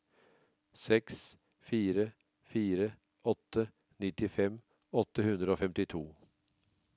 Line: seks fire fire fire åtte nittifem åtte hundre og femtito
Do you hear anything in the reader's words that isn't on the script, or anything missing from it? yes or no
yes